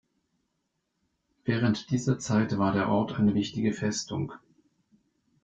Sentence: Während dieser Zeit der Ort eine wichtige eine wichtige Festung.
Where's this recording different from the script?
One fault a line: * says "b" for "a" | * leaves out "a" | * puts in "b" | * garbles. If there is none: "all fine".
* puts in "war"
* leaves out "eine wichtige"